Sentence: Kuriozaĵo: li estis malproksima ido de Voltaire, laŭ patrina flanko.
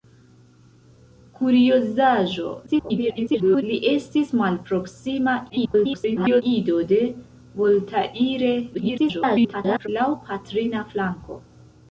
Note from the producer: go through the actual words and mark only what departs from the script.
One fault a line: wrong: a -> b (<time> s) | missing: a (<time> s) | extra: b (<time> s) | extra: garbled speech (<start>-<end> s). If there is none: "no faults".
extra: garbled speech (2.7-3.6 s)
extra: garbled speech (5.5-6.4 s)
extra: garbled speech (8.7-9.9 s)